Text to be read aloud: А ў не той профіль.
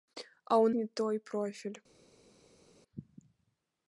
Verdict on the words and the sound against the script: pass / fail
pass